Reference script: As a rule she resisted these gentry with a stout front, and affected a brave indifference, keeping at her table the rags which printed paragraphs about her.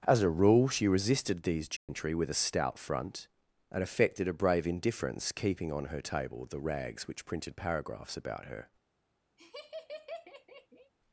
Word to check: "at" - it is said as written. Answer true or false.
false